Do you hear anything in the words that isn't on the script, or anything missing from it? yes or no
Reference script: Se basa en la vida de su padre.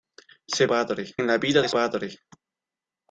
yes